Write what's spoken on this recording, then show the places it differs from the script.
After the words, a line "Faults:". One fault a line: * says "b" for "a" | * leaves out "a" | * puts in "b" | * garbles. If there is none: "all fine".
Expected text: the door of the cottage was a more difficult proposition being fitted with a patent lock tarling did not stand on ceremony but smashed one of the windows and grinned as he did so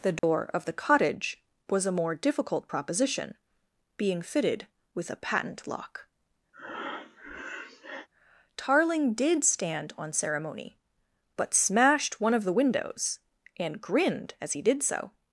the door of the cottage was a more difficult proposition being fitted with a patent lock tarling did stand on ceremony but smashed one of the windows and grinned as he did so
Faults:
* leaves out "not"